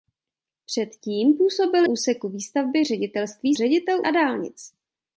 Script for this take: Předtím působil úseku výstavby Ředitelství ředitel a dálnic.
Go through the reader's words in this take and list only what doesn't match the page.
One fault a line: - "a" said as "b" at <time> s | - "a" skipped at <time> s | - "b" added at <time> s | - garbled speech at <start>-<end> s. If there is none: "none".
none